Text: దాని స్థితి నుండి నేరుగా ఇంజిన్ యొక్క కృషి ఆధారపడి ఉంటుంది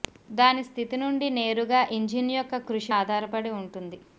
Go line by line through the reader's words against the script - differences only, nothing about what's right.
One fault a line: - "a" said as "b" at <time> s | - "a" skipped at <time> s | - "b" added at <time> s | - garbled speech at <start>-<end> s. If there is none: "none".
none